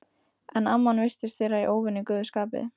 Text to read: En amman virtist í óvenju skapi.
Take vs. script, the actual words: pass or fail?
fail